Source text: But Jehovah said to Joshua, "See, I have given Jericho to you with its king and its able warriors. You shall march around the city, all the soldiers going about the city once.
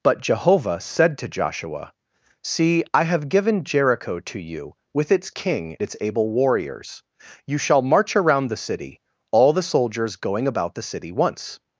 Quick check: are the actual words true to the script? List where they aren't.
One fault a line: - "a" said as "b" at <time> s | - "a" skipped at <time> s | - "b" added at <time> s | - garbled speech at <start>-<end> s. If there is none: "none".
- "and" skipped at 5.8 s